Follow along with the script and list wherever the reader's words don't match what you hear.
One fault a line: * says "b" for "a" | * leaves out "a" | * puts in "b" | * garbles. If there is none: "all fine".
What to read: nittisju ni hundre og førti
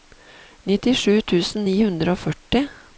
* puts in "tusen"